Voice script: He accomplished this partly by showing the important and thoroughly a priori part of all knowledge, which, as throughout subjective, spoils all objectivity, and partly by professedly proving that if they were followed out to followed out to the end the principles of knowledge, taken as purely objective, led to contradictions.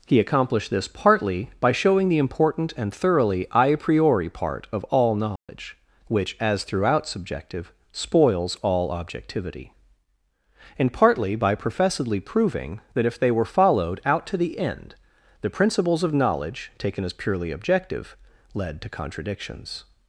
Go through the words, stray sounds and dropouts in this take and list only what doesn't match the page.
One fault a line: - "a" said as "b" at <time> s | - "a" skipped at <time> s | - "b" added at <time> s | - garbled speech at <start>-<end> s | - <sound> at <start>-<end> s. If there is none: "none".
- dropout at 5.4-5.5 s
- "followed out to" skipped at 14.4 s